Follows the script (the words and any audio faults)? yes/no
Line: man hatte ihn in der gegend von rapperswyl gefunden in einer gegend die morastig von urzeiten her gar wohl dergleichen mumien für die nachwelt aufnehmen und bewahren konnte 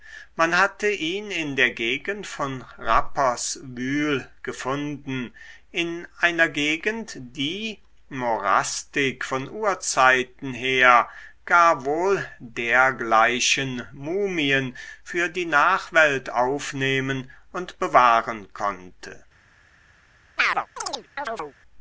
no